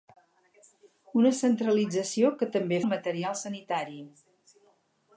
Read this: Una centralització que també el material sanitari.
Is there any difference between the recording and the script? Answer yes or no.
no